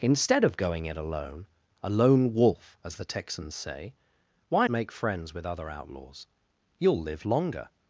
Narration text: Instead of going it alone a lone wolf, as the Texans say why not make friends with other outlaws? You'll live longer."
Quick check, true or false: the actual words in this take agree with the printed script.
false